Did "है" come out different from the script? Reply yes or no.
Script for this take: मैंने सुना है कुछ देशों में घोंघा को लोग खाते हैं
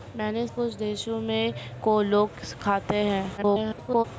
yes